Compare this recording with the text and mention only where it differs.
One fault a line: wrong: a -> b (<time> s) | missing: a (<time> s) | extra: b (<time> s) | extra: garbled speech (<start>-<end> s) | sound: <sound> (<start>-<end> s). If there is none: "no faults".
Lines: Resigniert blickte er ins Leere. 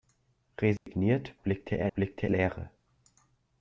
sound: dropout (0.8-0.9 s)
wrong: ins -> blickte (1.9 s)